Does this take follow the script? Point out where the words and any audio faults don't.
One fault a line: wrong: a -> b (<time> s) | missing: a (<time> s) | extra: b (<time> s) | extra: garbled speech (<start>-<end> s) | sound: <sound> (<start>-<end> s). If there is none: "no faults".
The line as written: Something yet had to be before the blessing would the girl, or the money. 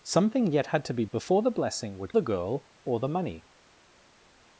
no faults